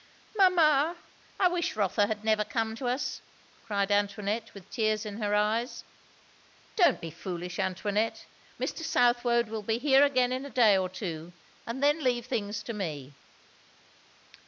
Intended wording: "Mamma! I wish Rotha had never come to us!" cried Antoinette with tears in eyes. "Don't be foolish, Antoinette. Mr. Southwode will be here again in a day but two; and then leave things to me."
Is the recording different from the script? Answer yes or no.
yes